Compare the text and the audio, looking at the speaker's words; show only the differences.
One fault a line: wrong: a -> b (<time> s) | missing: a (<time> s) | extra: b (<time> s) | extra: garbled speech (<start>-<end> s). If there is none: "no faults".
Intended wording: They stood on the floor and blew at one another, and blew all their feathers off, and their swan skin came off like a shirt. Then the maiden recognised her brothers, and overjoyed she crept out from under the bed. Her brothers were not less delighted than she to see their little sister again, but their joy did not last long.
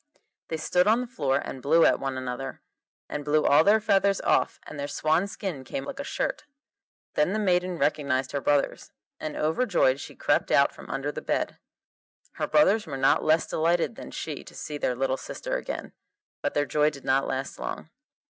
missing: off (5.9 s)